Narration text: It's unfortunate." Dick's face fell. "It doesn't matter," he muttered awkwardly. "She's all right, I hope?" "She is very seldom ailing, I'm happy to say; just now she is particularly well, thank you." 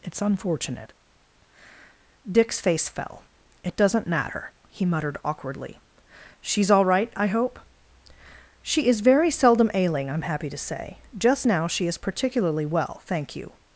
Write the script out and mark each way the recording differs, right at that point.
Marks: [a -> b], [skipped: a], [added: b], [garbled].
It's unfortunate." Dick's face fell. "It doesn't matter," he muttered awkwardly. "She's all right, I hope?" "She is very seldom ailing, I'm happy to say; just now she is particularly well, thank you."